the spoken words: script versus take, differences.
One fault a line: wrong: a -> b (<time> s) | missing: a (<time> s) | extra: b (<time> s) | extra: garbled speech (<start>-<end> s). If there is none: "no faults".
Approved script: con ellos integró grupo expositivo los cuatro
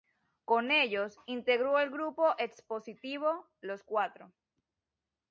extra: el (1.8 s)